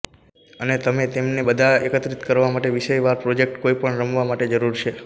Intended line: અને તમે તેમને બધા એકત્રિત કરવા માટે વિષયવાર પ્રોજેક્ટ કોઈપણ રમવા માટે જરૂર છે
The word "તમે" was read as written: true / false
true